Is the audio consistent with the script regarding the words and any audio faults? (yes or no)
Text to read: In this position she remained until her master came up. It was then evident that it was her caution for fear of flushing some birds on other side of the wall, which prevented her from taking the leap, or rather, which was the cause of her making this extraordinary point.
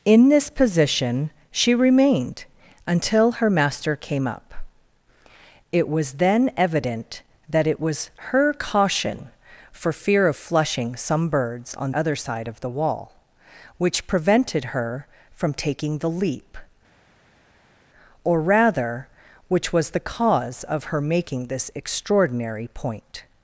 yes